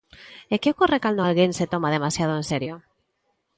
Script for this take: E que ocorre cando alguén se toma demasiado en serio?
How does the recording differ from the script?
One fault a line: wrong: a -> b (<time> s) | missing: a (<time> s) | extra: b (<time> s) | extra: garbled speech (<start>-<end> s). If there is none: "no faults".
no faults